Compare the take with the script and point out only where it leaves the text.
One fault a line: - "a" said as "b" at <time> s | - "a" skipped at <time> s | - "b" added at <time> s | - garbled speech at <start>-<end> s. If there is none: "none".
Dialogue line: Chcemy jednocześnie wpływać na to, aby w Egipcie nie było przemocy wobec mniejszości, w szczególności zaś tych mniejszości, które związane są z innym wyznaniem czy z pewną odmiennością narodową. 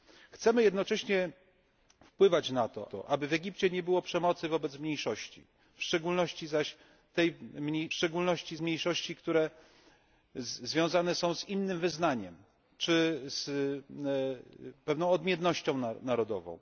- "to" added at 2.9 s
- "tych" said as "szczególności" at 7.9 s